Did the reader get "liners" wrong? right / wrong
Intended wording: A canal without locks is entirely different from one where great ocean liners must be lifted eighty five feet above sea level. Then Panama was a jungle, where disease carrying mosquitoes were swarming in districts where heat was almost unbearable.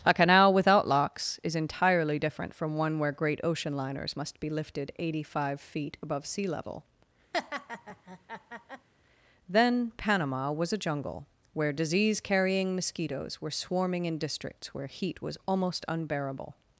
right